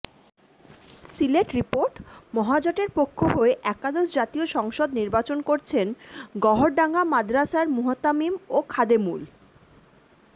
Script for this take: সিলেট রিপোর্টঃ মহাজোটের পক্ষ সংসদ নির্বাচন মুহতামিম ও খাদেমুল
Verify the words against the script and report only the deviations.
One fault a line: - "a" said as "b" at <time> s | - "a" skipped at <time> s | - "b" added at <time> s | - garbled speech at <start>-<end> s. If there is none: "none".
- "হয়ে একাদশ জাতীয়" added at 3.3 s
- "করছেন গওহরডাঙ্গা মাদরাসার" added at 5.4 s